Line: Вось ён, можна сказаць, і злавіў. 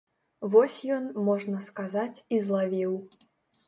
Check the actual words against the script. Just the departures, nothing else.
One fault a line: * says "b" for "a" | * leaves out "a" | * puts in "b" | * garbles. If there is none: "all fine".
all fine